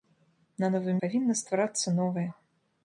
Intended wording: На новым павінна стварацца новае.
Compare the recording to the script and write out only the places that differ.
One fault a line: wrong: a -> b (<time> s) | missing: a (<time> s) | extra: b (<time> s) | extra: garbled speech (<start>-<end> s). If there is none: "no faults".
no faults